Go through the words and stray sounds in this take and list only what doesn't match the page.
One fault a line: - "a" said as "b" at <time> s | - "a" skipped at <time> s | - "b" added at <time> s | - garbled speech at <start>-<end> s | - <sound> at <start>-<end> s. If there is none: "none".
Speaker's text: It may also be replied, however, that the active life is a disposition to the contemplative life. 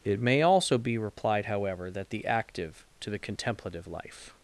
- "life is a disposition" skipped at 2.8 s